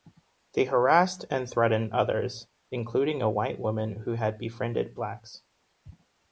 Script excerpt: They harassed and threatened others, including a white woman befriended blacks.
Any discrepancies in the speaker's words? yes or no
yes